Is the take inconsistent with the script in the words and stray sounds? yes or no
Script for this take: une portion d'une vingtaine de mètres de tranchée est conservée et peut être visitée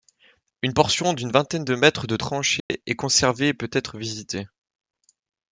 yes